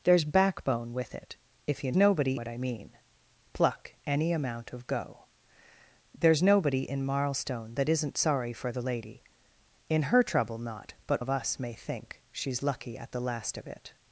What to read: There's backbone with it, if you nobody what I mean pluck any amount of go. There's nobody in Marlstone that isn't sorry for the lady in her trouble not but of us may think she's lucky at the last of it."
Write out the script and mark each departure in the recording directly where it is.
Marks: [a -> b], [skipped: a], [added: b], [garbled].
There's backbone with it, if you nobody what I mean pluck any amount of go. There's nobody in Marlstone that isn't sorry for the lady in her trouble not but of us may think she's lucky at the last of it."